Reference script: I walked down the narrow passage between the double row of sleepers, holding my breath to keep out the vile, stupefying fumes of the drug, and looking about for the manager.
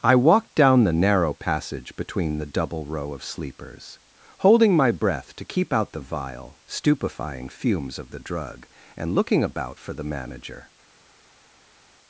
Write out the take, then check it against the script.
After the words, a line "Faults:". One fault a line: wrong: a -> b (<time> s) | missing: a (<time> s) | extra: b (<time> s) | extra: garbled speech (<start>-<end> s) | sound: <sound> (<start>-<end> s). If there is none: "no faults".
I walked down the narrow passage between the double row of sleepers, holding my breath to keep out the vile, stupefying fumes of the drug, and looking about for the manager.
Faults:
no faults